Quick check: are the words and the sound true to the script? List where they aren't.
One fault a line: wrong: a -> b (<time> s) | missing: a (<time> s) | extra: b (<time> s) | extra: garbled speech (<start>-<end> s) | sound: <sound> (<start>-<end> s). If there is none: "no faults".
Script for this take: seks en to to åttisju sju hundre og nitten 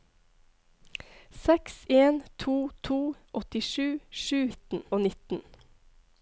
wrong: hundre -> nitten (4.5 s)